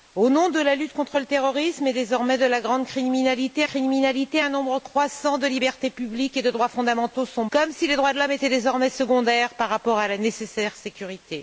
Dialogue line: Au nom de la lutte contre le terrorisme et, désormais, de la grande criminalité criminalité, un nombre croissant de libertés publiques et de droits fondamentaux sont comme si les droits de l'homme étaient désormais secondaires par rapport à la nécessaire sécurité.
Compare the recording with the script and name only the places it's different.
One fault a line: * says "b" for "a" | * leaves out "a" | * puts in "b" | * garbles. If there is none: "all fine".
all fine